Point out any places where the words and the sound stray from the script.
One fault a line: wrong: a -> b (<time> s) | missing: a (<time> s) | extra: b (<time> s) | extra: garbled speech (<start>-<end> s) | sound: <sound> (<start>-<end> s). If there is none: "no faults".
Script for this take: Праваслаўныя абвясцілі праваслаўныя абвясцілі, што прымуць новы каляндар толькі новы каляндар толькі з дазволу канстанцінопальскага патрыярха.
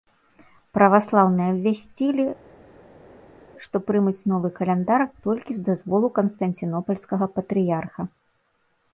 missing: праваслаўныя абвясцілі (2.2 s)
missing: новы каляндар толькі (5.5 s)